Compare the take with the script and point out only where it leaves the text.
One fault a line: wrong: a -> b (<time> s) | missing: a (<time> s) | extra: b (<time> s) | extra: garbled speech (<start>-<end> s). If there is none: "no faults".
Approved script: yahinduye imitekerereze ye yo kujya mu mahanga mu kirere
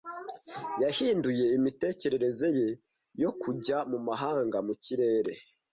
no faults